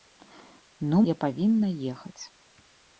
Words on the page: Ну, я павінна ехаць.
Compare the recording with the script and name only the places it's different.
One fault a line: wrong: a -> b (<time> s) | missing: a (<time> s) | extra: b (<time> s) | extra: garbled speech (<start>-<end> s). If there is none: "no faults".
no faults